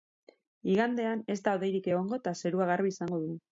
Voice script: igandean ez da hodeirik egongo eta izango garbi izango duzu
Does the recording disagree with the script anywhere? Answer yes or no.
yes